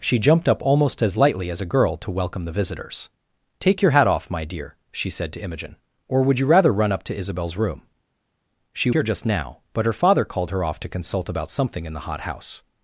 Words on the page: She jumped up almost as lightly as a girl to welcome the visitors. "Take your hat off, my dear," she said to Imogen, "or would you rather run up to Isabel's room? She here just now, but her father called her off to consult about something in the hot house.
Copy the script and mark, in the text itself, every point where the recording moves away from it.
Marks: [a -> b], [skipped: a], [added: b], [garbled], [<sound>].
She jumped up almost as lightly as a girl to welcome the visitors. "Take your hat off, my dear," she said to Imogen, "or would you rather run up to Isabel's room? She here just now, but her father called her off to consult about something in the hot house.